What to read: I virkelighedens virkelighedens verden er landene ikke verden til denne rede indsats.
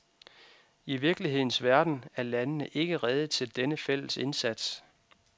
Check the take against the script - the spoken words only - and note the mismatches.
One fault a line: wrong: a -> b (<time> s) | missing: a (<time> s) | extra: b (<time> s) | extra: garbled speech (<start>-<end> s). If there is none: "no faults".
missing: virkelighedens (1.6 s)
wrong: verden -> rede (3.0 s)
wrong: rede -> fælles (3.8 s)